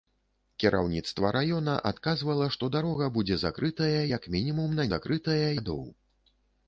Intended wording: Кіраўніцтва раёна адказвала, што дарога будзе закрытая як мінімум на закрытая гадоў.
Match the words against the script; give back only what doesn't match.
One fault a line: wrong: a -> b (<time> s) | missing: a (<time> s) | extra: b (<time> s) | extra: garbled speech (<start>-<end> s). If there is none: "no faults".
no faults